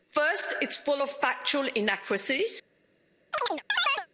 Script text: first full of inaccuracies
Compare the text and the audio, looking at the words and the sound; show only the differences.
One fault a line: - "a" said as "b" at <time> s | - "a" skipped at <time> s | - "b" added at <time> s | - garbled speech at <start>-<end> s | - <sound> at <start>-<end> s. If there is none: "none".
- "it's" added at 0.6 s
- "factual" added at 1.1 s
- chirp at 3.3-4.1 s